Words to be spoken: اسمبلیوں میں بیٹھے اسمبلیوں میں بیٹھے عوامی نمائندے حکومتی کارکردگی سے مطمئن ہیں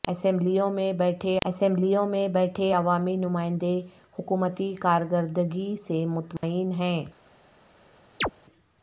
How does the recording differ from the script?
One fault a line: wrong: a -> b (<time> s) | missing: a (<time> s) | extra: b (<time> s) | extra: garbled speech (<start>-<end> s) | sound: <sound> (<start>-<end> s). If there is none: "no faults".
sound: dropout (6.4-6.4 s)
sound: chirp (8.2-8.3 s)